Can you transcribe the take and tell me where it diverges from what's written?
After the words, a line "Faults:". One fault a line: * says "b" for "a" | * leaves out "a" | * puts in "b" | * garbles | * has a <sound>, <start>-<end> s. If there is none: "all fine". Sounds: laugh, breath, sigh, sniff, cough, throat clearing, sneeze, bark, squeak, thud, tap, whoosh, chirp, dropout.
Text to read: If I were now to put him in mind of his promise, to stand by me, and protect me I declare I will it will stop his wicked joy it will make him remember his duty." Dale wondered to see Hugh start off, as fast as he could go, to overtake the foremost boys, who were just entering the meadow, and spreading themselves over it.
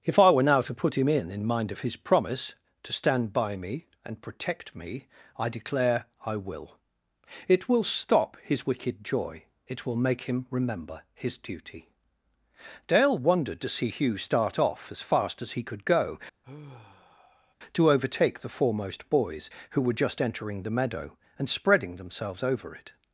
If I were now to put him in in mind of his promise, to stand by me, and protect me I declare I will it will stop his wicked joy it will make him remember his duty." Dale wondered to see Hugh start off, as fast as he could go, to overtake the foremost boys, who were just entering the meadow, and spreading themselves over it.
Faults:
* puts in "in"
* has a sigh, 16.4-17.5 s